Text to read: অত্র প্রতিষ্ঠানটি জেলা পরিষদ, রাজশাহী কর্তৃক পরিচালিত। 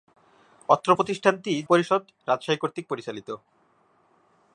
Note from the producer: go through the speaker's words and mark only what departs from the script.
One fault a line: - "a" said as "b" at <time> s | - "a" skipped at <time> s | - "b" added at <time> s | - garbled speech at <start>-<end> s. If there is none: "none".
- "জেলা" skipped at 1.5 s